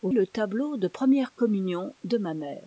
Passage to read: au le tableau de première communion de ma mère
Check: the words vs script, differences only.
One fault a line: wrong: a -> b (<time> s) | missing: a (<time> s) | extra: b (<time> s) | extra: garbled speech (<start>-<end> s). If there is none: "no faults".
no faults